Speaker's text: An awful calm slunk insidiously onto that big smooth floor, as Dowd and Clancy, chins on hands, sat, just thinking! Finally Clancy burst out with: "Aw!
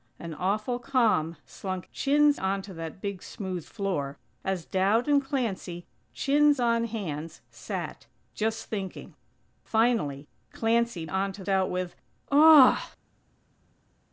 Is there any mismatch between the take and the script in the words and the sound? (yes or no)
yes